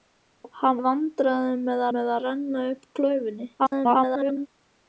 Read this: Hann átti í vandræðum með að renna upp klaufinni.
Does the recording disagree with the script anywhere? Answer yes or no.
yes